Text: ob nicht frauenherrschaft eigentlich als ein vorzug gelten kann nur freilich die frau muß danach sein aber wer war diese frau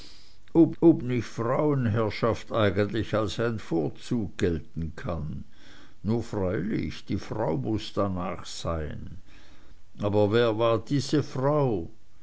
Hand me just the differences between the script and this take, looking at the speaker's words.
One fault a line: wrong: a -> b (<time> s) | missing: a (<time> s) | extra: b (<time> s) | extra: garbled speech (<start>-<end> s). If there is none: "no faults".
extra: ob (0.8 s)